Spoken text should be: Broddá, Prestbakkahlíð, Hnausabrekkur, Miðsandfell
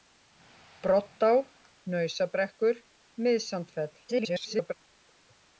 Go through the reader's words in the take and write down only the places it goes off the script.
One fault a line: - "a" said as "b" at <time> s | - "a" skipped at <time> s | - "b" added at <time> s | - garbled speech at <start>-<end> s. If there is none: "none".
- "Prestbakkahlíð" skipped at 1.3 s
- garbled speech at 4.1-4.7 s